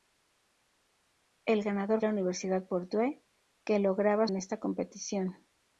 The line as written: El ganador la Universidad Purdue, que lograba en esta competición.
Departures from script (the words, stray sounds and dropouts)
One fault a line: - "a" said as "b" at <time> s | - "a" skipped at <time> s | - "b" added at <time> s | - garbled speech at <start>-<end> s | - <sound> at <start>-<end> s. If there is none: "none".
none